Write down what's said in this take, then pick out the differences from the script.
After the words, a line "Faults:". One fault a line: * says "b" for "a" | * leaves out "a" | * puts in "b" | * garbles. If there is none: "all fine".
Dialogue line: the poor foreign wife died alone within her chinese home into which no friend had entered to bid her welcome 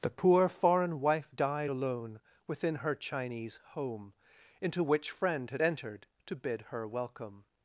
the poor foreign wife died alone within her chinese home into which friend had entered to bid her welcome
Faults:
* leaves out "no"